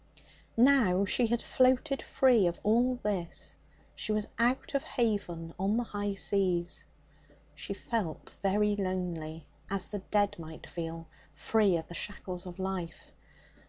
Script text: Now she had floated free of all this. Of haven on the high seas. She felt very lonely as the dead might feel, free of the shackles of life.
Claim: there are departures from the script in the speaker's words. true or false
true